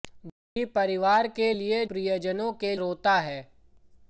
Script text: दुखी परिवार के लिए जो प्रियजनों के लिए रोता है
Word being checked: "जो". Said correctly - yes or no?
no